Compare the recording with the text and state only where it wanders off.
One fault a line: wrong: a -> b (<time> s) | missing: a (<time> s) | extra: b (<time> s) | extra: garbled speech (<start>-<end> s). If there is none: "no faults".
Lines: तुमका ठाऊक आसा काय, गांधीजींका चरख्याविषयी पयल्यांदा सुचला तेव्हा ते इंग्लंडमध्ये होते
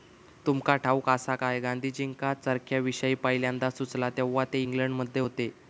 no faults